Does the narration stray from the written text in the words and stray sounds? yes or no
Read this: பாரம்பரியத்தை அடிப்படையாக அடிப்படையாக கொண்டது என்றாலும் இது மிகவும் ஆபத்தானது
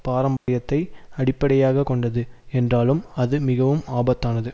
yes